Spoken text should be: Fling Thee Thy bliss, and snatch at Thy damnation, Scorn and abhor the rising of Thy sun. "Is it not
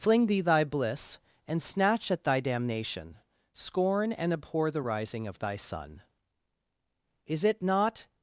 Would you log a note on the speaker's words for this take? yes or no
no